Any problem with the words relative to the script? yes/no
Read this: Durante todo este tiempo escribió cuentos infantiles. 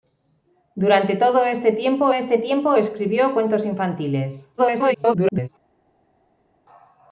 yes